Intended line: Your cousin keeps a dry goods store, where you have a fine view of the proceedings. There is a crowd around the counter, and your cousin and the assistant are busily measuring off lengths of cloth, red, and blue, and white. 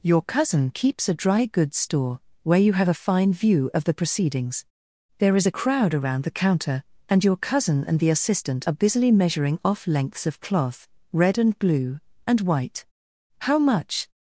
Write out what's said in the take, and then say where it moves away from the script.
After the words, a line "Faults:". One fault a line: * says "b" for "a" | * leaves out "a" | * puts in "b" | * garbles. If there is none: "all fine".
Your cousin keeps a dry goods store, where you have a fine view of the proceedings. There is a crowd around the counter, and your cousin and the assistant are busily measuring off lengths of cloth, red, and blue, and white. "How much
Faults:
* puts in "How much"